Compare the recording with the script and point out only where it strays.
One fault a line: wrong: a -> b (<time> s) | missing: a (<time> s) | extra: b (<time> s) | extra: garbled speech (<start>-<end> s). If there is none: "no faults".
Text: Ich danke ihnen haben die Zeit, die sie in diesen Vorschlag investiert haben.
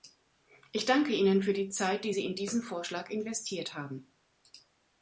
wrong: haben -> für (1.4 s)